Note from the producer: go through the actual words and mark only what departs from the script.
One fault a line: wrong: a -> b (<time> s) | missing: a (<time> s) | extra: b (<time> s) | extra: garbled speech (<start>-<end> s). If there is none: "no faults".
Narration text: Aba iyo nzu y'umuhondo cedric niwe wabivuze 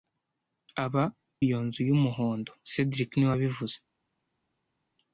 no faults